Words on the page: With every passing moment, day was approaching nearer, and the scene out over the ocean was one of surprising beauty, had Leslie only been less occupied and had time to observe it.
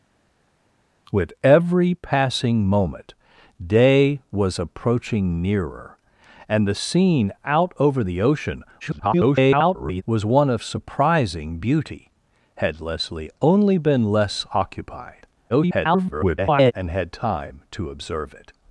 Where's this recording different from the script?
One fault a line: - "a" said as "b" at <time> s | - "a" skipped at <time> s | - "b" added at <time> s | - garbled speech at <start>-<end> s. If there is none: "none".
- garbled speech at 8.8-10.0 s
- garbled speech at 15.5-16.7 s